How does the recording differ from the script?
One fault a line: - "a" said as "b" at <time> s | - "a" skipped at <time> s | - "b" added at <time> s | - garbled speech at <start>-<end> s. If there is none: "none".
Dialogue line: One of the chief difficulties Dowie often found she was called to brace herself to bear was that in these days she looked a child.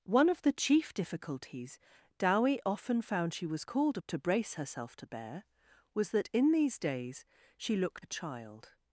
none